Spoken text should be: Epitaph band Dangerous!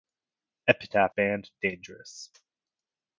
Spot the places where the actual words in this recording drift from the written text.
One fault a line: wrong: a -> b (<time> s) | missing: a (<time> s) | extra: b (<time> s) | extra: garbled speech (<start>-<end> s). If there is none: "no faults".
no faults